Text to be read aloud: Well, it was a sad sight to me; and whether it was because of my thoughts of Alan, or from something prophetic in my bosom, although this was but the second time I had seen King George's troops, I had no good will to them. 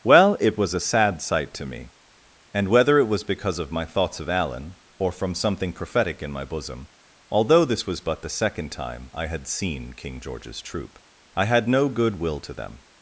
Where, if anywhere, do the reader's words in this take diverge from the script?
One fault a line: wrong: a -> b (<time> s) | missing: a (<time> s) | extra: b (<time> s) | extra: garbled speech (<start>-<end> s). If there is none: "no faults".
wrong: troops -> troop (10.6 s)